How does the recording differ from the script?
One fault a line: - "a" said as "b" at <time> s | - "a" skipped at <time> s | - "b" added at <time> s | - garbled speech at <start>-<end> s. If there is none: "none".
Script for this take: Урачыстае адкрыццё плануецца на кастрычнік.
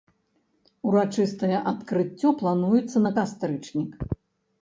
none